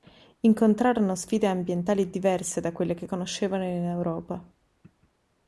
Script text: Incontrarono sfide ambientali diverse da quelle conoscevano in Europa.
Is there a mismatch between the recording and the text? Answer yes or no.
yes